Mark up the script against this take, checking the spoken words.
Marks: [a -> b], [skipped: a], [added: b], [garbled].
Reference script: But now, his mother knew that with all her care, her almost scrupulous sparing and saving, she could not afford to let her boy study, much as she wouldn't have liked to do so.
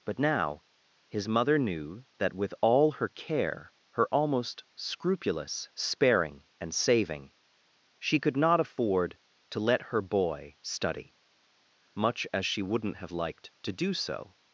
But now, his mother knew that with all her care, her almost scrupulous sparing and saving, she could not afford to let her boy study, much as she wouldn't have liked to do so.